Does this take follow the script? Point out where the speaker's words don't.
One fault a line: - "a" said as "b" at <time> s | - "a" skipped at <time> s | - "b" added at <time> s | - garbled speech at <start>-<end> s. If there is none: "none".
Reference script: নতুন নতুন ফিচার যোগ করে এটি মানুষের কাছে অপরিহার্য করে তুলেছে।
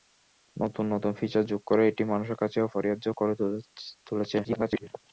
- garbled speech at 4.4-4.9 s